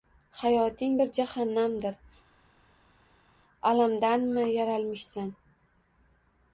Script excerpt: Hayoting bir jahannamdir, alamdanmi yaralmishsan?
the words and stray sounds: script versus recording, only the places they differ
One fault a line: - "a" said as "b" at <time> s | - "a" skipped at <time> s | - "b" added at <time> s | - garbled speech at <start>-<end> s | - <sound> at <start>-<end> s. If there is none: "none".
none